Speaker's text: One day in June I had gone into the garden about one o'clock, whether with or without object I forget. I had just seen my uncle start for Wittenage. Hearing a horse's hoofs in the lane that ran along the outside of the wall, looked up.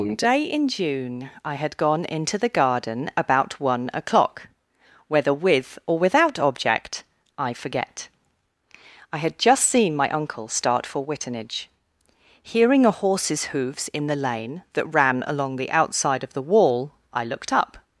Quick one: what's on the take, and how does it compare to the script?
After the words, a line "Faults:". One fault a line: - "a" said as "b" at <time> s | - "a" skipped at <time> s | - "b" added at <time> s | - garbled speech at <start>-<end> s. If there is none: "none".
One day in June I had gone into the garden about one o'clock, whether with or without object I forget. I had just seen my uncle start for Wittenage. Hearing a horse's hoofs in the lane that ran along the outside of the wall, I looked up.
Faults:
- "I" added at 17.1 s